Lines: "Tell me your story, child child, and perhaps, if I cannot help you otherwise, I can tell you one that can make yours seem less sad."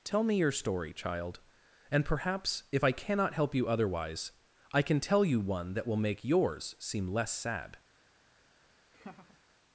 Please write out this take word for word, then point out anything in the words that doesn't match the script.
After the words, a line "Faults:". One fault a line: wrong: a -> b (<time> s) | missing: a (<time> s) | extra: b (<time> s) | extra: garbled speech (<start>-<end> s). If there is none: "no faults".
"Tell me your story, child, and perhaps, if I cannot help you otherwise, I can tell you one that will make yours seem less sad."
Faults:
missing: child (1.4 s)
wrong: can -> will (5.9 s)